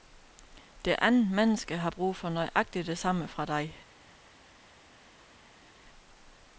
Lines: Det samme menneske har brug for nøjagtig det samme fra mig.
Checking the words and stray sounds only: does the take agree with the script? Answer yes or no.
no